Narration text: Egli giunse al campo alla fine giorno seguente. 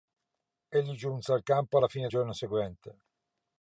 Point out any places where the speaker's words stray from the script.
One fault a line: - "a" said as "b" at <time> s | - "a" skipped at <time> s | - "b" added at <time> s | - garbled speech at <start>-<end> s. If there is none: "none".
none